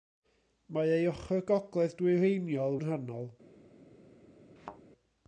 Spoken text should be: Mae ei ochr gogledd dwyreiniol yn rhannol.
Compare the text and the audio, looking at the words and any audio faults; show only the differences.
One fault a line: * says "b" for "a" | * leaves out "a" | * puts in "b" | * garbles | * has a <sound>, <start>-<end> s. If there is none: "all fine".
* has a thud, 4.6-4.8 s